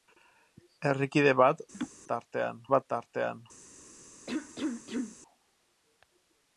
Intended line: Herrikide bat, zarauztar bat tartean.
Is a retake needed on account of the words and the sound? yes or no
yes